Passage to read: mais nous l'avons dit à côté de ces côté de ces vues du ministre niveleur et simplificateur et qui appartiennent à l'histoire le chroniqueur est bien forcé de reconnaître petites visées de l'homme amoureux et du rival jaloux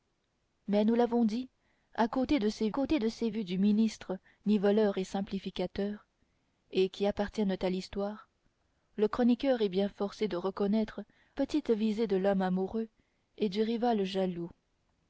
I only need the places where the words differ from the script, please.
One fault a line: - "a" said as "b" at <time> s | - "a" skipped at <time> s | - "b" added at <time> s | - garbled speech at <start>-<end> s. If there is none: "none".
none